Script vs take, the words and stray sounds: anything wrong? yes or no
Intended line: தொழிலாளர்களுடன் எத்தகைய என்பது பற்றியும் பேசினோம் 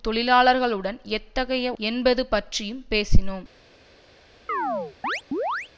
yes